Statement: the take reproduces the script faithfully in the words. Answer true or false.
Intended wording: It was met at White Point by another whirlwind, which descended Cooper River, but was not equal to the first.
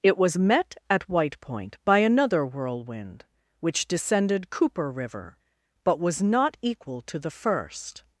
true